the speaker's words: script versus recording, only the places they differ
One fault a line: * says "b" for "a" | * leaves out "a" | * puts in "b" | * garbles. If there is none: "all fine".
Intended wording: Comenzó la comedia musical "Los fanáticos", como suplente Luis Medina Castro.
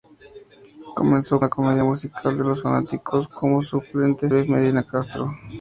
all fine